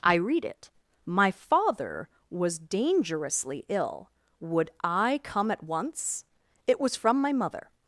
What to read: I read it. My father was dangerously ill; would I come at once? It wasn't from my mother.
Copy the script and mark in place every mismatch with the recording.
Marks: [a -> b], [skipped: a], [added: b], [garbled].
I read it. My father was dangerously ill; would I come at once? It [wasn't -> was] from my mother.